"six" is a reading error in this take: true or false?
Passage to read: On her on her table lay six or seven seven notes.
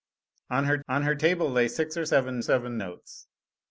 false